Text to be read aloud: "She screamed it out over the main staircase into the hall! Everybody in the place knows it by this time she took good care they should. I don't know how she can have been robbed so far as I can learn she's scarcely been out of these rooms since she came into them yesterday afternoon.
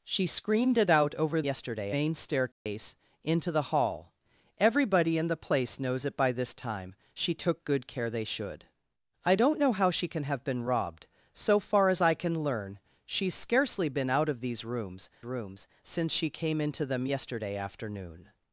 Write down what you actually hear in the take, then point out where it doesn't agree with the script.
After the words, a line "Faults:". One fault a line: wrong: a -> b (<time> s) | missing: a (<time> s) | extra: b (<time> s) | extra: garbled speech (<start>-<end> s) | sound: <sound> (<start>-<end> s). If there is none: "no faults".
"She screamed it out over yesterday main staircase into the hall! Everybody in the place knows it by this time she took good care they should. I don't know how she can have been robbed so far as I can learn she's scarcely been out of these rooms rooms since she came into them yesterday afternoon.
Faults:
wrong: the -> yesterday (1.4 s)
sound: dropout (2.5-2.7 s)
extra: rooms (15.2 s)